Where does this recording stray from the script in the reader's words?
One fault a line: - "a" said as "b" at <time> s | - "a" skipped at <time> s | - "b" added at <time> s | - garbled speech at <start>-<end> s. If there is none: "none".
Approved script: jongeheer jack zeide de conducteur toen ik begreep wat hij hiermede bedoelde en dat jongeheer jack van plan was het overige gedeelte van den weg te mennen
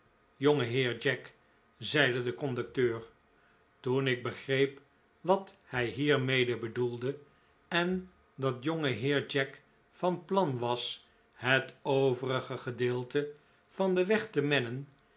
none